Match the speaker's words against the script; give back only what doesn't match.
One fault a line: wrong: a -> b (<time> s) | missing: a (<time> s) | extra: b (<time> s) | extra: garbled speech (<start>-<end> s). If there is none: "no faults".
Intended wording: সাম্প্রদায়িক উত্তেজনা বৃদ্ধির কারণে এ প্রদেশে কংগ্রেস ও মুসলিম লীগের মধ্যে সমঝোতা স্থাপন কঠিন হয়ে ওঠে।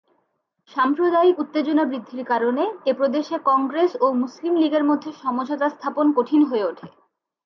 no faults